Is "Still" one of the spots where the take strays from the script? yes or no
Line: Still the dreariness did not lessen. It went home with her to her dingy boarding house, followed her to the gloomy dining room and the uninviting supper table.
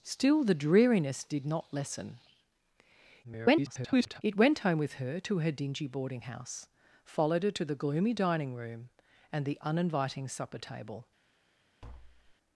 no